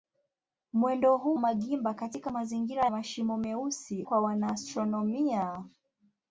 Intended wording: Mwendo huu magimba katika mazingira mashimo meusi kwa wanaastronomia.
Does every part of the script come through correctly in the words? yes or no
yes